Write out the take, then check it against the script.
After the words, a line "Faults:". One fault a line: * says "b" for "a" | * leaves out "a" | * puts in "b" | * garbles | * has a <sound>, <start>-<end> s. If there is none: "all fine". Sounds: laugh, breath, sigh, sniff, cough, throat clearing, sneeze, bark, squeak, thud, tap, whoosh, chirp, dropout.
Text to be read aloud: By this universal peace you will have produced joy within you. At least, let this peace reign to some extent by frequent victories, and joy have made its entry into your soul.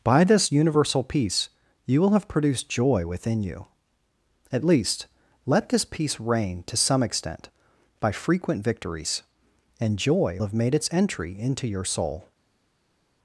By this universal peace you will have produced joy within you. At least, let this peace reign to some extent by frequent victories, and joy have made its entry into your soul.
Faults:
all fine